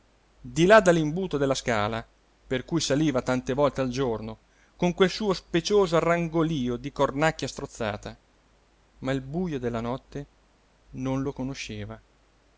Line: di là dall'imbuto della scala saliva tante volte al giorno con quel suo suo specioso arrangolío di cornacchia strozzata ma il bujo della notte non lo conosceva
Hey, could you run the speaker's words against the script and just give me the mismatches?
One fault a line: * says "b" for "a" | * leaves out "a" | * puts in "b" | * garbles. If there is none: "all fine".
* puts in "per cui"
* leaves out "suo"